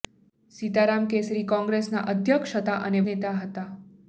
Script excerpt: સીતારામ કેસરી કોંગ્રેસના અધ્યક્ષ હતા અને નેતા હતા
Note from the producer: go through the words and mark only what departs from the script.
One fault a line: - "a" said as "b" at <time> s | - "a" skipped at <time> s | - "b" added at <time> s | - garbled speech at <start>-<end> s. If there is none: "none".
none